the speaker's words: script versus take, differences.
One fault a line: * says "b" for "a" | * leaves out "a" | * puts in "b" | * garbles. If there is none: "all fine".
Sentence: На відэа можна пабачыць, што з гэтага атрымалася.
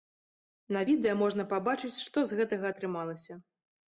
all fine